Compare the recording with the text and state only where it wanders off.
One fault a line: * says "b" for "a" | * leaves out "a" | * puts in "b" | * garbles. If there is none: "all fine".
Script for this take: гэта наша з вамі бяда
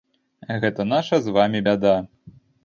all fine